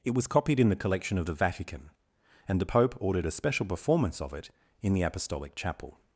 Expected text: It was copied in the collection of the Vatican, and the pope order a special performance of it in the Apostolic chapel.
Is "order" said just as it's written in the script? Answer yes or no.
no